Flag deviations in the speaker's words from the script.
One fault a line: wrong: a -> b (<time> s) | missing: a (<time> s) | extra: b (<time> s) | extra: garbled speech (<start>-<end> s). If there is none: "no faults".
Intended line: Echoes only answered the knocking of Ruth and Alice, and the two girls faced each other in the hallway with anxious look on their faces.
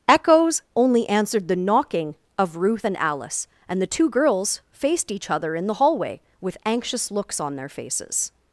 wrong: look -> looks (7.1 s)